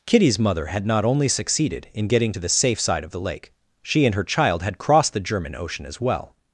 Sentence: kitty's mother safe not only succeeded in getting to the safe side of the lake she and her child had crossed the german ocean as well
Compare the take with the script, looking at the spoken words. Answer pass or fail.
fail